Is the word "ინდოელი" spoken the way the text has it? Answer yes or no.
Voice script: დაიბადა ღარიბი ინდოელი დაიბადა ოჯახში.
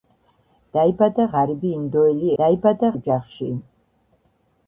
yes